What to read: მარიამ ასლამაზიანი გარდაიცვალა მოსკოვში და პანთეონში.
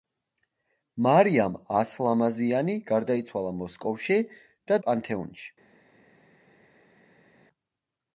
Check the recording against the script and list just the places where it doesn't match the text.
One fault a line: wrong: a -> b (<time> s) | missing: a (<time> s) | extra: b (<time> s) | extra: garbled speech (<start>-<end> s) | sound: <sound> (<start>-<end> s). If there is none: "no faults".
no faults